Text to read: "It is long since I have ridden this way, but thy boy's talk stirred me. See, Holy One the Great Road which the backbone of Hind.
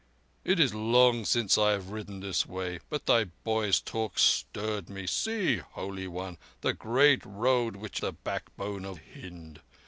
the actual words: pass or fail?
pass